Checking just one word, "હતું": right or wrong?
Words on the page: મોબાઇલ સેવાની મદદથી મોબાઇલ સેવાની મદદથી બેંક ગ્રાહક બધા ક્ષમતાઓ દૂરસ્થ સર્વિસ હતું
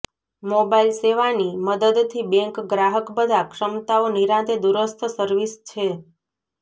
wrong